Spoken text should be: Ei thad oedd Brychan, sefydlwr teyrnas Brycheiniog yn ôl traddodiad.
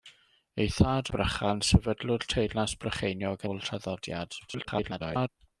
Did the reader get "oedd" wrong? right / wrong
wrong